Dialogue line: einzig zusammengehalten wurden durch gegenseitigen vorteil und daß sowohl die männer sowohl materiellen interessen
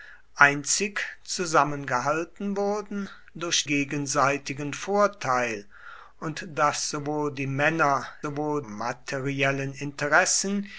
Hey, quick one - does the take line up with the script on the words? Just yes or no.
yes